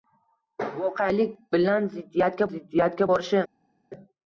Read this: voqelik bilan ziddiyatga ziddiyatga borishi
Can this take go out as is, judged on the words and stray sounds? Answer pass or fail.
pass